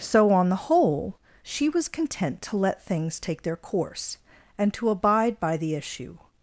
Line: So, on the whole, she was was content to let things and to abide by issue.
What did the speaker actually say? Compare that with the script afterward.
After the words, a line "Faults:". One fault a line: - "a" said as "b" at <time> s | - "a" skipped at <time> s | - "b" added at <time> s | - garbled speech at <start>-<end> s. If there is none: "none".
So, on the whole, she was content to let things take their course, and to abide by the issue.
Faults:
- "was" skipped at 1.9 s
- "take their course" added at 3.2 s
- "the" added at 5.6 s